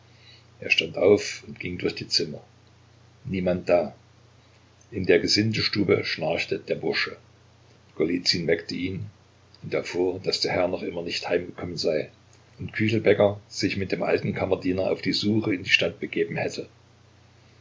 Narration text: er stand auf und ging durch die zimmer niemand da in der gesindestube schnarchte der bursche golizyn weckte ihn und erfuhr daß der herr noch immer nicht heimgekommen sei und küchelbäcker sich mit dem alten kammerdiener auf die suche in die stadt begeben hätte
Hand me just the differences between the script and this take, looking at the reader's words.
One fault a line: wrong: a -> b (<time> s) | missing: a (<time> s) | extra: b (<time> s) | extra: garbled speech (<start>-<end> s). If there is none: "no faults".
no faults